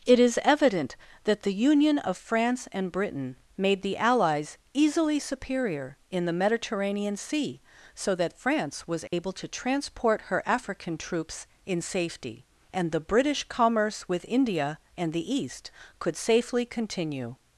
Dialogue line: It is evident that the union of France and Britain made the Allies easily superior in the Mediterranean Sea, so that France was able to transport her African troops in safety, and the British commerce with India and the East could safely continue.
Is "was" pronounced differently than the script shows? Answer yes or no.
no